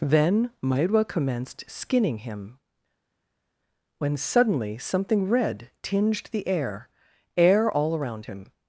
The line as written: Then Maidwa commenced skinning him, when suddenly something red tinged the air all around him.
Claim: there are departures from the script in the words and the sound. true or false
true